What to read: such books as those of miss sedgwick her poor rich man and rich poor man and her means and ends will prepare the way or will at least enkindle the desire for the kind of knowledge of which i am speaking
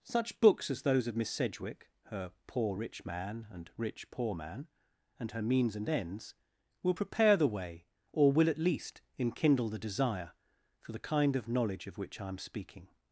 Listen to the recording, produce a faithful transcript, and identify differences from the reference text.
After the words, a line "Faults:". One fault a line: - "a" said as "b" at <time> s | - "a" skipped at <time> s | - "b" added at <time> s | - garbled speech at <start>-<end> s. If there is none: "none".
such books as those of miss sedgwick her poor rich man and rich poor man and her means and ends will prepare the way or will at least enkindle the desire for the kind of knowledge of which i am speaking
Faults:
none